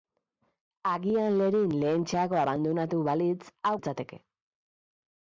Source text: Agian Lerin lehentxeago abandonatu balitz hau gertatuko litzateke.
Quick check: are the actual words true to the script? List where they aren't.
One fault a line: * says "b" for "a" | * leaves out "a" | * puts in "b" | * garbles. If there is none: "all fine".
* leaves out "gertatuko"